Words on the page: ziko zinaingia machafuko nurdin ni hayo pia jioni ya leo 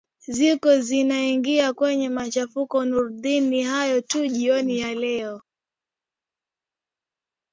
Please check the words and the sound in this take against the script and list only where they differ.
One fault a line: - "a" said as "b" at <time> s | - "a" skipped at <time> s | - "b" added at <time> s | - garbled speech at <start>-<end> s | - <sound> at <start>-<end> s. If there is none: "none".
- "kwenye" added at 1.7 s
- "pia" said as "tu" at 4.0 s